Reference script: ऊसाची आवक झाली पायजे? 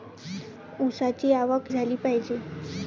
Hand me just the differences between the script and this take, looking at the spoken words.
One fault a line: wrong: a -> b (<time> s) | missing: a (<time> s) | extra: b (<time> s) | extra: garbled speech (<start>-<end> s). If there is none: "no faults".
no faults